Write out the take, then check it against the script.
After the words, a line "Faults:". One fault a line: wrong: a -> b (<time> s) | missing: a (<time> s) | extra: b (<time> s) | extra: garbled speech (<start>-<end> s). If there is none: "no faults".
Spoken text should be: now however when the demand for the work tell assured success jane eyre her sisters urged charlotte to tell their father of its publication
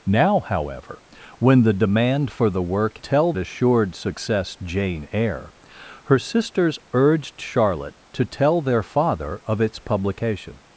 now however when the demand for the work tell assured success jane eyre her sisters urged charlotte to tell their father of its publication
Faults:
no faults